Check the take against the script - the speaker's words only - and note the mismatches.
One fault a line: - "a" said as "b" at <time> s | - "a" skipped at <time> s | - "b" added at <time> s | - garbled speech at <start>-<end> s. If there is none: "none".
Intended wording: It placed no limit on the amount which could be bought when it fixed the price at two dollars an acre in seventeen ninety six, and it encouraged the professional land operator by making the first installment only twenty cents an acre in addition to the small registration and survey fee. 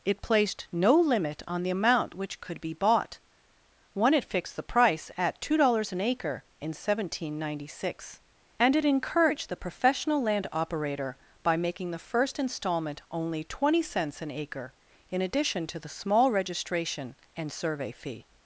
- "when" said as "one" at 3.9 s